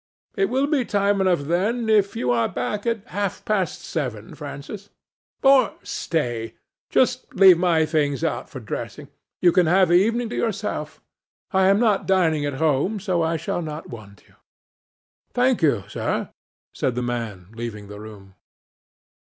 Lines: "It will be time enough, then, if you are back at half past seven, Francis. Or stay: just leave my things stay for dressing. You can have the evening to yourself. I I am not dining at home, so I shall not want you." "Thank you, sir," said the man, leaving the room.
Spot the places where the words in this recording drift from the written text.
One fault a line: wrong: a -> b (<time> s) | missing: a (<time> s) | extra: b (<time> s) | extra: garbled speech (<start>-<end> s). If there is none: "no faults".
wrong: stay -> out (8.2 s)
missing: I (11.7 s)